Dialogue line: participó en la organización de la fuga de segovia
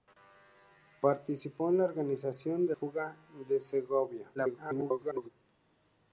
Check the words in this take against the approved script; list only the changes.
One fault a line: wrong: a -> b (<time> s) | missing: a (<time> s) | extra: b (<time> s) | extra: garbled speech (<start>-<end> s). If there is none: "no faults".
missing: la (2.7 s)
extra: garbled speech (4.3-5.3 s)